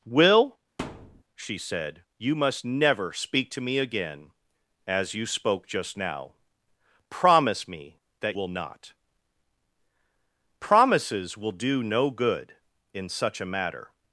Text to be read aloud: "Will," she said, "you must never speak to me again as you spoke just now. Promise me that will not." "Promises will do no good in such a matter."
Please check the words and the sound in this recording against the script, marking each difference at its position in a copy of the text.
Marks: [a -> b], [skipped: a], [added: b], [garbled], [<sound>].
"Will," [thud] she said, "you must never speak to me again as you spoke just now. Promise me that will not." "Promises will do no good in such a matter."